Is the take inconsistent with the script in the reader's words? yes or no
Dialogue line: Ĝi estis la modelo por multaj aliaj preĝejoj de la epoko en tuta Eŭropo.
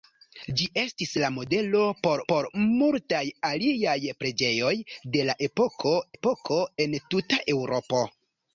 yes